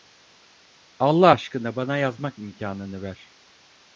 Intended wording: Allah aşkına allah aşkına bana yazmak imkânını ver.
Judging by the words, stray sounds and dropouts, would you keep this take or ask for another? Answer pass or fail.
fail